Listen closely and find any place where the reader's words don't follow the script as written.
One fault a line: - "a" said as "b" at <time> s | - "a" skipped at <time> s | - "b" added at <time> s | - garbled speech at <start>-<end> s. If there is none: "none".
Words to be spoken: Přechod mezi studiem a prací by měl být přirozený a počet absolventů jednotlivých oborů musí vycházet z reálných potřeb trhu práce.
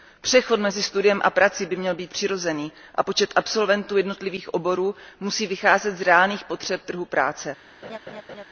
none